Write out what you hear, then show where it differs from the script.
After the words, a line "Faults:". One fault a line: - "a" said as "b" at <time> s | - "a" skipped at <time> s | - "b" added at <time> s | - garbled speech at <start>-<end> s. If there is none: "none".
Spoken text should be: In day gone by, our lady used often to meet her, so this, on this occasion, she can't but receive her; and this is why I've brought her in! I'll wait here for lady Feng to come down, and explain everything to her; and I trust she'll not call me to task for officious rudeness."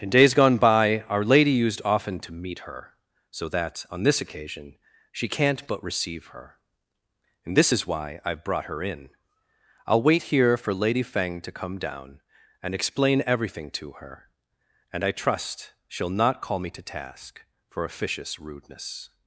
In days gone by, our lady used often to meet her, so that, on this occasion, she can't but receive her; and this is why I've brought her in! I'll wait here for lady Feng to come down, and explain everything to her; and I trust she'll not call me to task for officious rudeness."
Faults:
- "day" said as "days" at 0.1 s
- "this" said as "that" at 3.5 s